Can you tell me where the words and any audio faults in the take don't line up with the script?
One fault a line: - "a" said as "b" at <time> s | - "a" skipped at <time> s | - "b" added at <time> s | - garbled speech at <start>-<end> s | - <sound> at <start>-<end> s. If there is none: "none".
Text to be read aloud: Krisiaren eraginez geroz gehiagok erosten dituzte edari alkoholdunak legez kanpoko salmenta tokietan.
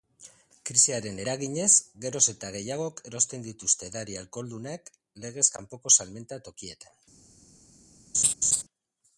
- "eta" added at 2.3 s
- laugh at 8.1-8.6 s